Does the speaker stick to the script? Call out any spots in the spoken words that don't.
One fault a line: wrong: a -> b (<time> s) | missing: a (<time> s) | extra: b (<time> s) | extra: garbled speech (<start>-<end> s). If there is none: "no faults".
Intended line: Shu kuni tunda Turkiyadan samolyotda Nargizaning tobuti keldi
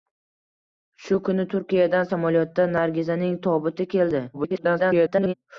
missing: tunda (1.4 s)
extra: garbled speech (4.3-5.3 s)